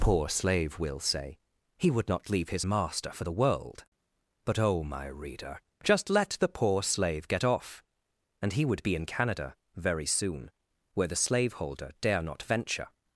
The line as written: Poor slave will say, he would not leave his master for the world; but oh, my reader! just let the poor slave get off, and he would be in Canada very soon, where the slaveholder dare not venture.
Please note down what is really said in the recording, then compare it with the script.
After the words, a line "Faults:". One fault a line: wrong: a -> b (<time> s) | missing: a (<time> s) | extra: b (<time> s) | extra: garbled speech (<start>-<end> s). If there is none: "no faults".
Poor slave will say, he would not leave his master for the world; but oh, my reader! just let the poor slave get off, and he would be in Canada very soon, where the slaveholder dare not venture.
Faults:
no faults